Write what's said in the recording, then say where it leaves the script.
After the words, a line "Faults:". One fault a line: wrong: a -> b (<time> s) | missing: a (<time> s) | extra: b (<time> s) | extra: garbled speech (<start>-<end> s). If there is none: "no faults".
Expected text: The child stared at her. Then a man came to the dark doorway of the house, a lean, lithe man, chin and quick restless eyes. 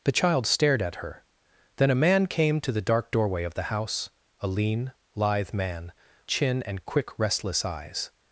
The child stared at her. Then a man came to the dark doorway of the house, a lean, lithe man, chin and quick restless eyes.
Faults:
no faults